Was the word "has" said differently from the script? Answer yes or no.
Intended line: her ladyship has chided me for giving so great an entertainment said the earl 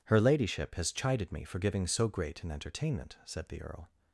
no